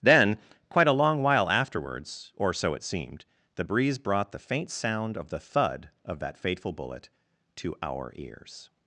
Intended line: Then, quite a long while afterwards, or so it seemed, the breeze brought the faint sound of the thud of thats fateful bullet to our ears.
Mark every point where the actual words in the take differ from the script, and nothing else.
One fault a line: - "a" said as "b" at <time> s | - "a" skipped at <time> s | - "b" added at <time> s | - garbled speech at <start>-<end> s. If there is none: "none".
- "thats" said as "that" at 6.2 s